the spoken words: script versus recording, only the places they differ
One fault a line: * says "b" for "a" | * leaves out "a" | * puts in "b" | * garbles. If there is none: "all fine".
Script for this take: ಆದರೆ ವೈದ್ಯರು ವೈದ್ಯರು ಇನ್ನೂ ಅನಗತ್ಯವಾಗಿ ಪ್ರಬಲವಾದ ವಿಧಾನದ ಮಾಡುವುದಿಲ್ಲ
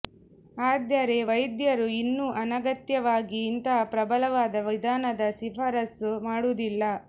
* leaves out "ವೈದ್ಯರು"
* puts in "ಇಂತಹ"
* puts in "ಶಿಫಾರಸು"